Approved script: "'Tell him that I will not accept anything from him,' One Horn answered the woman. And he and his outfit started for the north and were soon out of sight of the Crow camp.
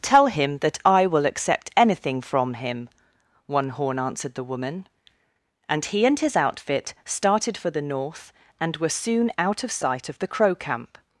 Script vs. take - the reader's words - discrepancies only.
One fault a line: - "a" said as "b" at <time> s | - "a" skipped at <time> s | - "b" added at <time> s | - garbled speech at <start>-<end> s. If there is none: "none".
- "not" skipped at 1.2 s